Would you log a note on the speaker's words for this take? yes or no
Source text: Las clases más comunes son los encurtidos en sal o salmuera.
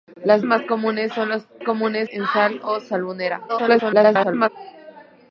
yes